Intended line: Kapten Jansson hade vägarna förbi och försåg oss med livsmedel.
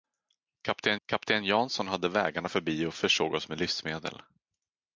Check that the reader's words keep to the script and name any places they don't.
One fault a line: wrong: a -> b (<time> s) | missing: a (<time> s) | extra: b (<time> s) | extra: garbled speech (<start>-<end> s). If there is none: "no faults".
extra: kapten (1.1 s)